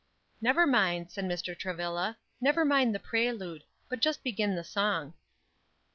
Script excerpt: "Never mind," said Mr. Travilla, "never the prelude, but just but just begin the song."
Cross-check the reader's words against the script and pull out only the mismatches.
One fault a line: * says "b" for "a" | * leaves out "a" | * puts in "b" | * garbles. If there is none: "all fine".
* puts in "mind"
* leaves out "but just"